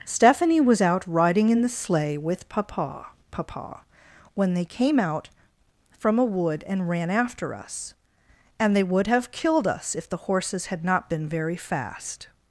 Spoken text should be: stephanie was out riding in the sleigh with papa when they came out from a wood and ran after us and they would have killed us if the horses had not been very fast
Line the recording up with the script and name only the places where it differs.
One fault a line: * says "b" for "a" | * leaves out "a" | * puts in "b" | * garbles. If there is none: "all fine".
* puts in "papa"